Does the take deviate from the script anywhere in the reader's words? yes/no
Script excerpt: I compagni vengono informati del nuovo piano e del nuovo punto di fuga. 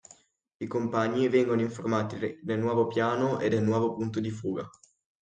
no